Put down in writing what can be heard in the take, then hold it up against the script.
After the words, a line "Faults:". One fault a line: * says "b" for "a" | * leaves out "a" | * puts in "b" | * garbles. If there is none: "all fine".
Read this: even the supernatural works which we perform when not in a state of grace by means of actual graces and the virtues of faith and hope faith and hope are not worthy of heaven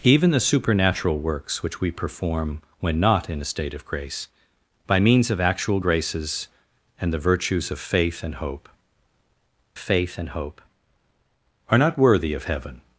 even the supernatural works which we perform when not in a state of grace by means of actual graces and the virtues of faith and hope faith and hope are not worthy of heaven
Faults:
all fine